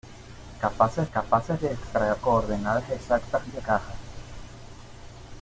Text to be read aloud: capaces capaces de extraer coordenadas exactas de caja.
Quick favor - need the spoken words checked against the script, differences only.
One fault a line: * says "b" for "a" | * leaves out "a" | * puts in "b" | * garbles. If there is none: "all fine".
all fine